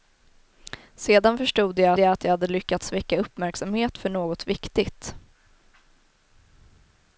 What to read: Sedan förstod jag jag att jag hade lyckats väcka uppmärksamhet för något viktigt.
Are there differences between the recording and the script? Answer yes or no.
no